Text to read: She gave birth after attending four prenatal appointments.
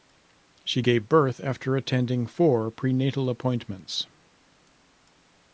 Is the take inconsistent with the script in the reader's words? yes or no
no